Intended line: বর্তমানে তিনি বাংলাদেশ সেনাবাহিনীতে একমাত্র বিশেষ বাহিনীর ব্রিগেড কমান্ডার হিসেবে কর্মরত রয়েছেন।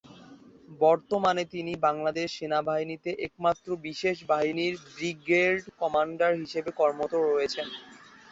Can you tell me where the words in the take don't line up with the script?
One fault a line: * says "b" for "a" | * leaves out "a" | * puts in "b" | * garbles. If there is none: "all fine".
all fine